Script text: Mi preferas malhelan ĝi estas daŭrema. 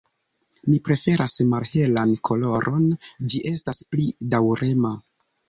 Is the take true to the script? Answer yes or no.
no